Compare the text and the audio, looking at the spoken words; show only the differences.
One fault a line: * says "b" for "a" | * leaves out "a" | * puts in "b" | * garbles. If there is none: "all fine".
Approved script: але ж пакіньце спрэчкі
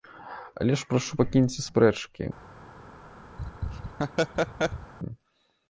* puts in "прашу"